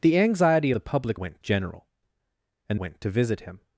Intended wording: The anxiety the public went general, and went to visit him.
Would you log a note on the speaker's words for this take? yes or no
no